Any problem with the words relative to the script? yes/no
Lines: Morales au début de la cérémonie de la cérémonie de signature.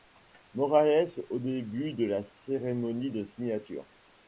yes